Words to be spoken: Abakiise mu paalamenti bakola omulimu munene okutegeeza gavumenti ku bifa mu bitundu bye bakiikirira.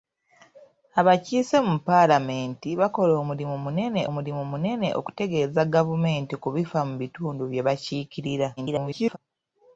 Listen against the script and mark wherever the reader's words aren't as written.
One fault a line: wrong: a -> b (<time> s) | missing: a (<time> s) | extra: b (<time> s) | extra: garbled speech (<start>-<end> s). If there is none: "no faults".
extra: omulimu munene (4.1 s)
extra: garbled speech (8.6-9.2 s)